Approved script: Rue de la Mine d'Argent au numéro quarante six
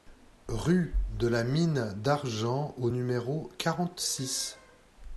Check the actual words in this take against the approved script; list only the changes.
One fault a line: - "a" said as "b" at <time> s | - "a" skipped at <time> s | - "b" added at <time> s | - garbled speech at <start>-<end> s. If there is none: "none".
none